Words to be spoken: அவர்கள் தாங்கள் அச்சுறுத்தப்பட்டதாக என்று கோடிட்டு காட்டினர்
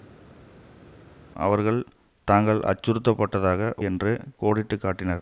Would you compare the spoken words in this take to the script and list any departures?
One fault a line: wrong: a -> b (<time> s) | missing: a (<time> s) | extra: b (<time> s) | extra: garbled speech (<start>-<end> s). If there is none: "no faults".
no faults